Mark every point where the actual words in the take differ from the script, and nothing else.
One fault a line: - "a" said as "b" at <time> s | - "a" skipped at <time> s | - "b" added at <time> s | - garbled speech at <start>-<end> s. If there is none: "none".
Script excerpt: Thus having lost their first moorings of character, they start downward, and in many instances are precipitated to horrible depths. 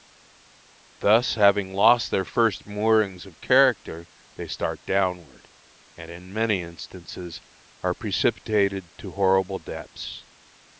none